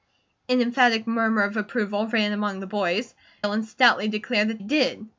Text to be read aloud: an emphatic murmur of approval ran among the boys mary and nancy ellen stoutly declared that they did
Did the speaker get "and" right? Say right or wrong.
wrong